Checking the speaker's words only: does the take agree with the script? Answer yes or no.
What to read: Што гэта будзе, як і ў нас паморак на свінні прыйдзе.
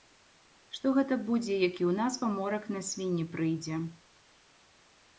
yes